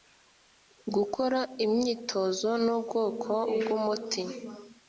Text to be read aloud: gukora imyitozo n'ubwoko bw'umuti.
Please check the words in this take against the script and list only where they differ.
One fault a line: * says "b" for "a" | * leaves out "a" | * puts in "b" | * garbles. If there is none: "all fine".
all fine